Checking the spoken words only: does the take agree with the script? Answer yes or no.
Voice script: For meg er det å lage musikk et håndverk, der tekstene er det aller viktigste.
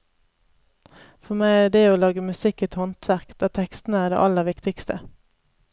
yes